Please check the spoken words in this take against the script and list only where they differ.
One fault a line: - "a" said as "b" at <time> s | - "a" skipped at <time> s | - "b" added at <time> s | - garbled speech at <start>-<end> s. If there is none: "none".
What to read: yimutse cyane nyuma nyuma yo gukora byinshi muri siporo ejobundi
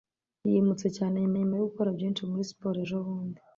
none